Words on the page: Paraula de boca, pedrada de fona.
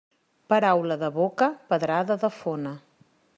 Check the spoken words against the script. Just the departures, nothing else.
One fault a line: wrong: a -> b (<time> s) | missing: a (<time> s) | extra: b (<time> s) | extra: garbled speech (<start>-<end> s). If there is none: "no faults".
no faults